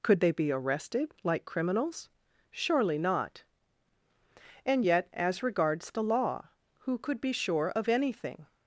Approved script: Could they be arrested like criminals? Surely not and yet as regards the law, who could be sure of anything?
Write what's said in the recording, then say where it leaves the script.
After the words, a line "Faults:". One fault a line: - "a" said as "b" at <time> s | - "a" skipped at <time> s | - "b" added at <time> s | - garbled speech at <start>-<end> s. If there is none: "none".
Could they be arrested like criminals? Surely not and yet as regards the law, who could be sure of anything?
Faults:
none